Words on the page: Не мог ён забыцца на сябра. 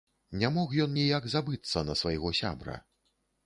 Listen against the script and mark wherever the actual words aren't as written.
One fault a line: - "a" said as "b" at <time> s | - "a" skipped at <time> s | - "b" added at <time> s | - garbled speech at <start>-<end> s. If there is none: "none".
- "ніяк" added at 1.0 s
- "свайго" added at 2.0 s